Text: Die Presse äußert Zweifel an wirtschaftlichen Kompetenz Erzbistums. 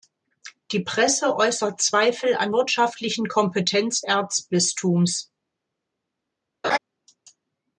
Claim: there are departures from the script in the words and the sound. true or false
true